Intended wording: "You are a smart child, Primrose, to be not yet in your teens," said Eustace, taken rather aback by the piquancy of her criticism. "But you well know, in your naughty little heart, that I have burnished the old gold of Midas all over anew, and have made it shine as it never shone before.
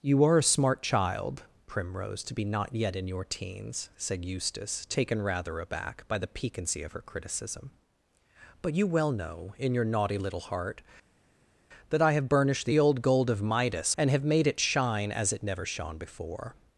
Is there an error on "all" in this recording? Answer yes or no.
yes